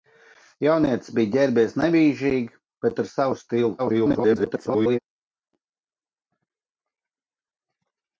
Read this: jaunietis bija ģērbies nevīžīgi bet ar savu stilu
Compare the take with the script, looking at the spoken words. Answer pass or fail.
fail